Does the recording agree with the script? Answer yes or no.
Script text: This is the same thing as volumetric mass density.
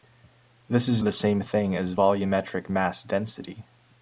yes